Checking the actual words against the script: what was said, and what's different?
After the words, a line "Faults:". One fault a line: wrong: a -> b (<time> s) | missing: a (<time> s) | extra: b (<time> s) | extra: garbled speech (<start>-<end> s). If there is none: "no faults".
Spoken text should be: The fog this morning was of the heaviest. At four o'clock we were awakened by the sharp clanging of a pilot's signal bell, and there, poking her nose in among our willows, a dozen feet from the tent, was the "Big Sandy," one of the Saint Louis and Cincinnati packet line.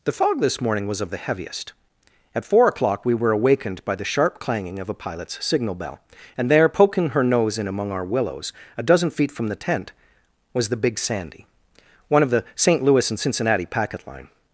The fog this morning was of the heaviest. At four o'clock we were awakened by the sharp clanging of a pilot's signal bell, and there, poking her nose in among our willows, a dozen feet from the tent, was the "Big Sandy," one of the Saint Louis and Cincinnati packet line.
Faults:
no faults